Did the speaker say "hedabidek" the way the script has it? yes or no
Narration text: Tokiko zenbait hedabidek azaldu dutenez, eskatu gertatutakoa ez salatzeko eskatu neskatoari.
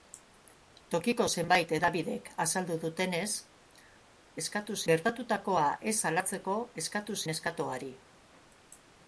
yes